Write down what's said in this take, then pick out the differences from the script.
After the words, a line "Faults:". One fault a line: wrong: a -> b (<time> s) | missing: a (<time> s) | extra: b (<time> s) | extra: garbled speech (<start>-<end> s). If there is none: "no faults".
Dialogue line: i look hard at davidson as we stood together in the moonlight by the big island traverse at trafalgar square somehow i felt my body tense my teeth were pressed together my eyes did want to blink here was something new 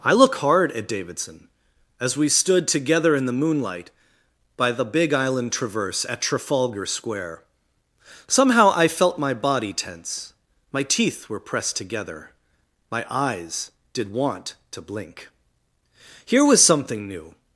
i look hard at davidson as we stood together in the moonlight by the big island traverse at trafalgar square somehow i felt my body tense my teeth were pressed together my eyes did want to blink here was something new
Faults:
no faults